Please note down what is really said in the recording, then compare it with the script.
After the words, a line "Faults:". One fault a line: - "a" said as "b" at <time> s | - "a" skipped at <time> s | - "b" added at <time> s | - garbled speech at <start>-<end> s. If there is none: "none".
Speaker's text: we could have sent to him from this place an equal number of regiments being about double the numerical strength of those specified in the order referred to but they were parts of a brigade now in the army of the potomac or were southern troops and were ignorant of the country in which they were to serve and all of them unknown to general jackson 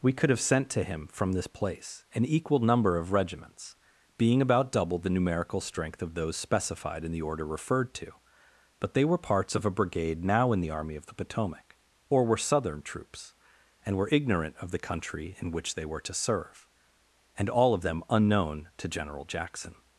we could have sent to him from this place an equal number of regiments being about double the numerical strength of those specified in the order referred to but they were parts of a brigade now in the army of the potomac or were southern troops and were ignorant of the country in which they were to serve and all of them unknown to general jackson
Faults:
none